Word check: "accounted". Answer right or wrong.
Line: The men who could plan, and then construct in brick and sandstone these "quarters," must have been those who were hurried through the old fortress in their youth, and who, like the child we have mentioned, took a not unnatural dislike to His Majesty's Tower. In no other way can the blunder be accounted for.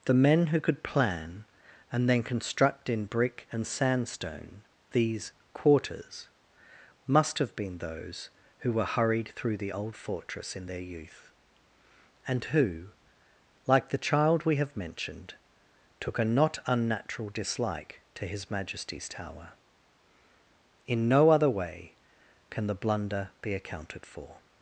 right